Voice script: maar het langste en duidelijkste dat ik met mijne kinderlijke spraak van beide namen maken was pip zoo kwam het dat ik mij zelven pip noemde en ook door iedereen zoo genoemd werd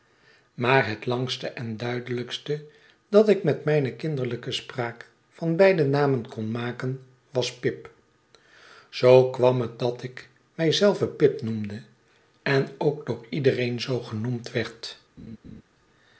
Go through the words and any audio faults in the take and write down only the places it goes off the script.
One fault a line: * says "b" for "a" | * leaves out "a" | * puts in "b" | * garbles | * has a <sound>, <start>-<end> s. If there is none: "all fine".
* puts in "kon"
* has a laugh, 15.2-15.6 s